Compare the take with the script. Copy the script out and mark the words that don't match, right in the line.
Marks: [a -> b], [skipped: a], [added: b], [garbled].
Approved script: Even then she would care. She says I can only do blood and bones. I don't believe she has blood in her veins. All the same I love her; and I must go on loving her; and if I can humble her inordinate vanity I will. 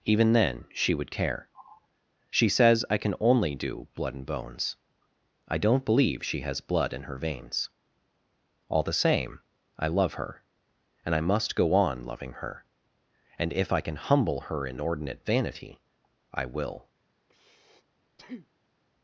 Even then she would care. She says I can only do blood and bones. I don't believe she has blood in her veins. All the same I love her; and I must go on loving her; and if I can humble her inordinate vanity I will.